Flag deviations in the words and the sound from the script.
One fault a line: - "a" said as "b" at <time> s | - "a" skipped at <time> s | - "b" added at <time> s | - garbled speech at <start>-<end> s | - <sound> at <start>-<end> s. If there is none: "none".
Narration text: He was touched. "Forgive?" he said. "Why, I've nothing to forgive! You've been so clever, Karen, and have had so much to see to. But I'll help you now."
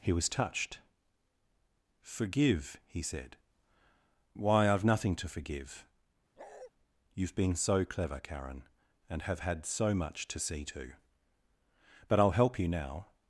- bark at 6.4-6.7 s